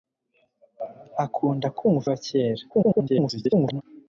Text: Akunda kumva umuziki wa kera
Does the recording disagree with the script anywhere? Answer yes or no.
yes